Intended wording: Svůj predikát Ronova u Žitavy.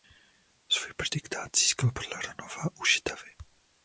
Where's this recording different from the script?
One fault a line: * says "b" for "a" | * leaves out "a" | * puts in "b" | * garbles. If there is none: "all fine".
* puts in "získal podle"